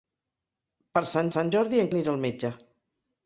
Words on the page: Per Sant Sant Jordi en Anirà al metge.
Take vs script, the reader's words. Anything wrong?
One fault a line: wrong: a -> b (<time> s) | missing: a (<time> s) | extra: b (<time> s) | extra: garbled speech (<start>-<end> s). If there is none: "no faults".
no faults